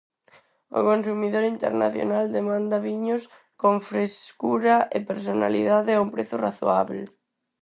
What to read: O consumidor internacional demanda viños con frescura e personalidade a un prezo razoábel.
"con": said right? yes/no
yes